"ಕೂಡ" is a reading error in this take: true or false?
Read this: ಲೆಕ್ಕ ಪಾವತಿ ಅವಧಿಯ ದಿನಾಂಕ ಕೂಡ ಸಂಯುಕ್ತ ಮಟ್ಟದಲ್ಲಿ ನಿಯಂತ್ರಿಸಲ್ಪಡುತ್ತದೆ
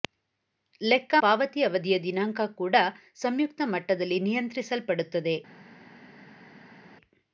false